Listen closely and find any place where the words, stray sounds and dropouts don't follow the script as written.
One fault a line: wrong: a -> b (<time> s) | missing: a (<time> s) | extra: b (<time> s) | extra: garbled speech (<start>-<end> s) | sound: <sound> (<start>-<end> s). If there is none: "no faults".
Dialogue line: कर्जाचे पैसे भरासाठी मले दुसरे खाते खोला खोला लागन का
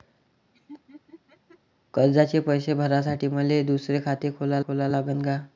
sound: laugh (0.5-1.6 s)